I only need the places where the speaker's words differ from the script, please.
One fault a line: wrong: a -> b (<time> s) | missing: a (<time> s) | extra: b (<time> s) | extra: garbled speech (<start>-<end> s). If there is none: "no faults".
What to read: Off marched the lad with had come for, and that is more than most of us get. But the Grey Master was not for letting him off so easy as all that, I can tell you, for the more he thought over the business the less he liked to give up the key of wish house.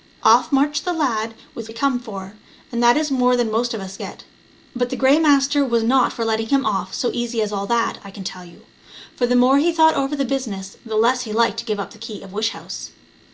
no faults